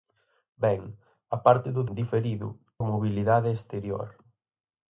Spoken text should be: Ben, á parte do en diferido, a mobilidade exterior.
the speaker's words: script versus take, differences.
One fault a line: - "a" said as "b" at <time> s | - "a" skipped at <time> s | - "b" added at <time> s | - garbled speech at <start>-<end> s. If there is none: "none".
none